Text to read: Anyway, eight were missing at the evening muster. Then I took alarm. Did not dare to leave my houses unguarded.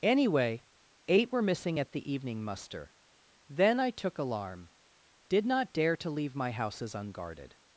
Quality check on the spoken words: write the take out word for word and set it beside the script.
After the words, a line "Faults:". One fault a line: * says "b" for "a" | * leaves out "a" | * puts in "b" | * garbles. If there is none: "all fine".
Anyway, eight were missing at the evening muster. Then I took alarm. Did not dare to leave my houses unguarded.
Faults:
all fine